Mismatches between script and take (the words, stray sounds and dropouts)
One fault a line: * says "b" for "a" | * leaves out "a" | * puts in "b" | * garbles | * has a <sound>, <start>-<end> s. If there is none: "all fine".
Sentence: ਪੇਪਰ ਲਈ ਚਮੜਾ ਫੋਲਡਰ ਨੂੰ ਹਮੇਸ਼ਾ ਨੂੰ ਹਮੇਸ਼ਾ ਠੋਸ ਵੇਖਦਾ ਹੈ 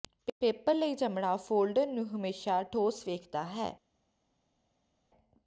* leaves out "ਨੂੰ ਹਮੇਸ਼ਾ"